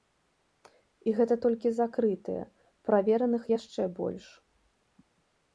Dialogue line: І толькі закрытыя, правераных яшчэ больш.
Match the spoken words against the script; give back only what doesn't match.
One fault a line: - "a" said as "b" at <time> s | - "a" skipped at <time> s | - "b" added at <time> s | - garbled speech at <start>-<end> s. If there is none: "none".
- "гэта" added at 1.2 s